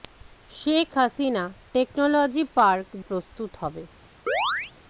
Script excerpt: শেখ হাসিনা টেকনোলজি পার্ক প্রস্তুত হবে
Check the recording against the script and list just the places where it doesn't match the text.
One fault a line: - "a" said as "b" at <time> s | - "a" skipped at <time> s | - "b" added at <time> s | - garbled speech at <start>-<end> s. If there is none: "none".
none